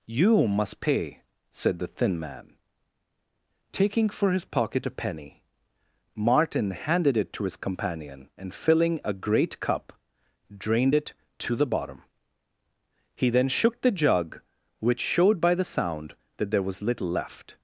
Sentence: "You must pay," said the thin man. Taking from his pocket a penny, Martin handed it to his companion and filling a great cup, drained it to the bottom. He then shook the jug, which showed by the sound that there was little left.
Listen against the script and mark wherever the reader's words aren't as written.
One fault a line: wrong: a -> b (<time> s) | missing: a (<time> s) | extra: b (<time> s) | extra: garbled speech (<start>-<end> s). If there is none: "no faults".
wrong: from -> for (4.1 s)